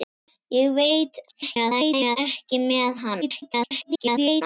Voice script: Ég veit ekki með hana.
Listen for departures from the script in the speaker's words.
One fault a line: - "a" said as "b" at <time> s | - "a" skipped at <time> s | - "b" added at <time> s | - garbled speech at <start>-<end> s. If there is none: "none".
- garbled speech at 1.3-2.2 s
- garbled speech at 3.2-4.4 s